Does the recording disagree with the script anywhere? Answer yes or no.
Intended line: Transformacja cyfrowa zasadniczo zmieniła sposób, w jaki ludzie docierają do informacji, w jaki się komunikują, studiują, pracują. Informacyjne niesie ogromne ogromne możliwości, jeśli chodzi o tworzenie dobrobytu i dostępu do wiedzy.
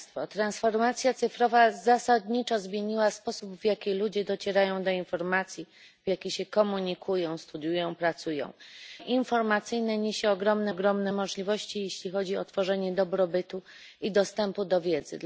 no